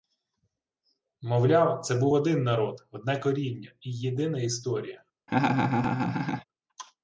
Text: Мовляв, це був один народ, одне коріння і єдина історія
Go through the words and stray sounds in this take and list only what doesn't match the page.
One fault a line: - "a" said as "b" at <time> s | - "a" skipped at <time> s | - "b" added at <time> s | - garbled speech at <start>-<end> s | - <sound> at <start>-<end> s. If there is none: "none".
- laugh at 5.3-6.4 s